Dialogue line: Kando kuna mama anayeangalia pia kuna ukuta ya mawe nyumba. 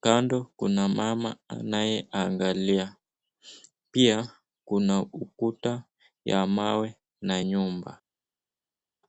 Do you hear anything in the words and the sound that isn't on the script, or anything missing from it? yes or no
yes